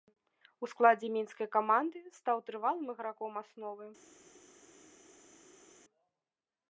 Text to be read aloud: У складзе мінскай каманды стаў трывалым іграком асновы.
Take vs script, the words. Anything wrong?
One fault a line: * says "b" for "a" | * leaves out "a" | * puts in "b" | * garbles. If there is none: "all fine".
all fine